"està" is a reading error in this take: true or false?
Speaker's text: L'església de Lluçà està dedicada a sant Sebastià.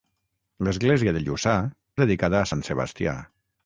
true